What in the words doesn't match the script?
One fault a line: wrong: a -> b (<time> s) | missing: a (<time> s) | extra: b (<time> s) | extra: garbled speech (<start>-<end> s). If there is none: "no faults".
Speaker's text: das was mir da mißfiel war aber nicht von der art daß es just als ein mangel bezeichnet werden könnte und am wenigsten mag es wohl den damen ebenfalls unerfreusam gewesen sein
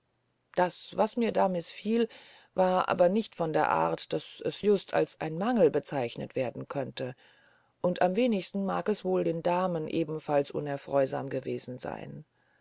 no faults